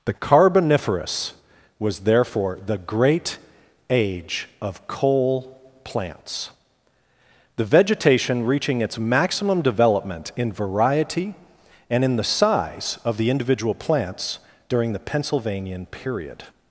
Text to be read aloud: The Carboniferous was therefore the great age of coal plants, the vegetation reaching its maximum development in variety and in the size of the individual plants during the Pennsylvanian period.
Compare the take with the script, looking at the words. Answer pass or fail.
pass